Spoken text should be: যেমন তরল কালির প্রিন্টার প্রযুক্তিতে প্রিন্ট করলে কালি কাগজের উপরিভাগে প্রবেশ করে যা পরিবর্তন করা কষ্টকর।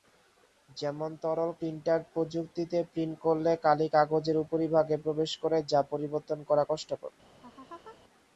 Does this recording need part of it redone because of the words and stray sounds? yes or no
yes